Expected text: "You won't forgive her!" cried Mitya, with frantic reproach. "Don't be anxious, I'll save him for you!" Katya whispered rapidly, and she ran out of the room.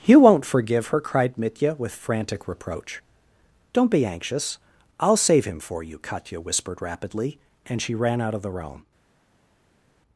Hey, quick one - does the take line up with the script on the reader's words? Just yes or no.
yes